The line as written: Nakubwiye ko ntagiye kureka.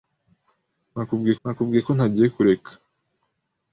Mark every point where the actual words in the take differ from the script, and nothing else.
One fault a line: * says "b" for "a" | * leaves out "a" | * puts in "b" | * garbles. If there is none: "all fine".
* puts in "nakubwiye"